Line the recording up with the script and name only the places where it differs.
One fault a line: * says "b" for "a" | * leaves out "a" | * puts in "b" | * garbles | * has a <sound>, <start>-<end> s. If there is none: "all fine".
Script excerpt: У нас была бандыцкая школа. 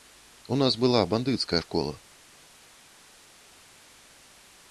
all fine